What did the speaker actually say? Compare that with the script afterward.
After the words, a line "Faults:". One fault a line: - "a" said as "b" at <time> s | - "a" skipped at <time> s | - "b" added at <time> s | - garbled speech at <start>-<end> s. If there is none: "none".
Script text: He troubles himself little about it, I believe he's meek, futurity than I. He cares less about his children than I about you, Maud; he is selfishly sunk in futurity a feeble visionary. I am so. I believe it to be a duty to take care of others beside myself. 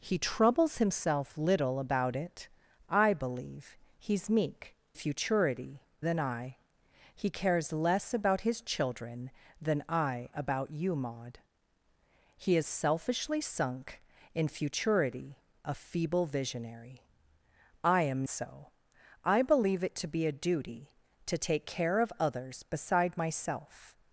He troubles himself little about it, I believe he's meek, futurity than I. He cares less about his children than I about you, Maud; he is selfishly sunk in futurity a feeble visionary. I am so. I believe it to be a duty to take care of others beside myself.
Faults:
none